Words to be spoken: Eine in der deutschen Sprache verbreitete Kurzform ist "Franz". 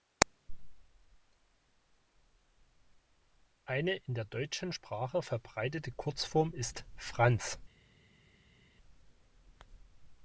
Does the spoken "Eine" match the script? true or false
true